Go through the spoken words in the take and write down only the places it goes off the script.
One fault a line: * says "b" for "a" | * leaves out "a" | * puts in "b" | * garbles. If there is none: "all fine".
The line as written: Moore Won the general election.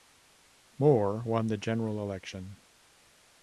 all fine